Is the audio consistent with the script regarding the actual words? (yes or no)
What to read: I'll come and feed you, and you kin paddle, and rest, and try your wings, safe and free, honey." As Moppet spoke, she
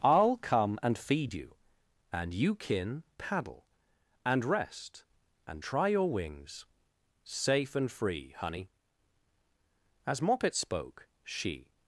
yes